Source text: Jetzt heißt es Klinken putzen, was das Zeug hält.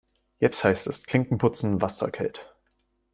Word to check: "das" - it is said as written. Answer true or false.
false